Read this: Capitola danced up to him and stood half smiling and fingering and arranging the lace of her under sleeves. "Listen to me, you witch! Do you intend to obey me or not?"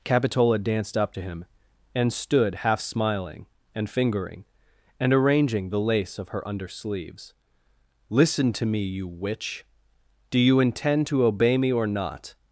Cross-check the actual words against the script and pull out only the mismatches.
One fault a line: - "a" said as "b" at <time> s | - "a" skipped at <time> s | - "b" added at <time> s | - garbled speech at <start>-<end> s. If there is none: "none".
none